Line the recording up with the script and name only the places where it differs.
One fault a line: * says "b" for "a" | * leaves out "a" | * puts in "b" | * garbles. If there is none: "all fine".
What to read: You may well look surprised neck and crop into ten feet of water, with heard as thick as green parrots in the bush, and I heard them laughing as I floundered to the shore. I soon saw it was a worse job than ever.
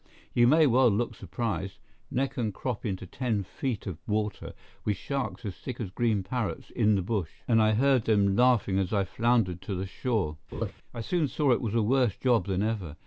* says "sharks" for "heard"